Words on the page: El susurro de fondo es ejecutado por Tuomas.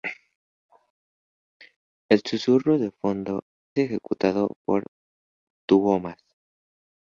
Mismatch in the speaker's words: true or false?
true